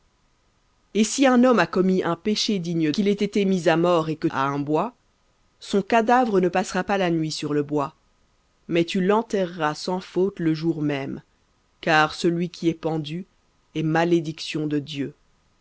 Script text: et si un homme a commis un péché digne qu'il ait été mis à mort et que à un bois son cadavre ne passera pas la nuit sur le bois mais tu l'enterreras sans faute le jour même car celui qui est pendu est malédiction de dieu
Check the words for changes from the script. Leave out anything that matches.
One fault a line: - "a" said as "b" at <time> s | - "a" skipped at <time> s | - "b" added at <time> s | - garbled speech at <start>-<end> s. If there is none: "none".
none